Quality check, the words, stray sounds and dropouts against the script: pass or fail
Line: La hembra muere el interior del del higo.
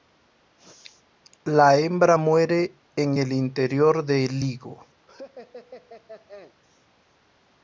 fail